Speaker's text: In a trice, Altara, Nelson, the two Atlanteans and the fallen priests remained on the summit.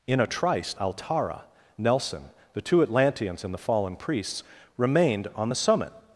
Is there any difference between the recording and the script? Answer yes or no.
no